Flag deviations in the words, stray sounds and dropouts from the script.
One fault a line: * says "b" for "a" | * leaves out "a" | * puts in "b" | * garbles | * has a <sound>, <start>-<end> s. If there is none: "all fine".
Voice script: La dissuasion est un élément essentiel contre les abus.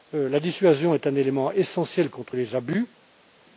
all fine